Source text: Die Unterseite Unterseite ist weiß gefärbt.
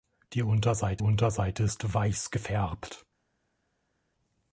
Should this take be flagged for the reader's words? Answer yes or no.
no